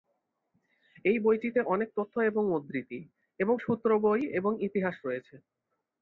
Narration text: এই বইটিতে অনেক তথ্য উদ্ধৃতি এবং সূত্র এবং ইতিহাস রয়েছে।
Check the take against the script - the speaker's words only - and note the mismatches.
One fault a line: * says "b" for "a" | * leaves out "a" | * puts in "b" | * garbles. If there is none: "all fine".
* puts in "এবং"
* puts in "বই"